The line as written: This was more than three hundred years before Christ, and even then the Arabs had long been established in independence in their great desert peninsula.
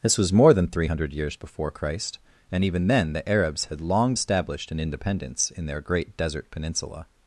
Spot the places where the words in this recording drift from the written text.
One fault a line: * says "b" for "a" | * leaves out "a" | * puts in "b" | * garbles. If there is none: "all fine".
* leaves out "been"